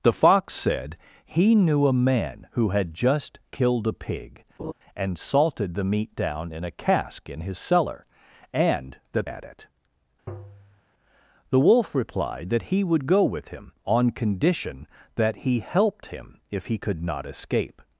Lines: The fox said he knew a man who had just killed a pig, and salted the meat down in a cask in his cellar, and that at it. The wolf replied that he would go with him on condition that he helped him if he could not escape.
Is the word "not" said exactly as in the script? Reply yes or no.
yes